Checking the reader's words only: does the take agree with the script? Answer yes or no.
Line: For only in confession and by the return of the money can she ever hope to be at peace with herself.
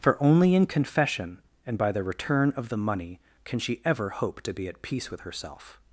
yes